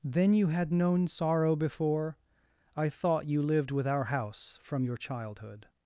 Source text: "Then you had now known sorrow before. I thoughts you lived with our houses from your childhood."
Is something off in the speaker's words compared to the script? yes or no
yes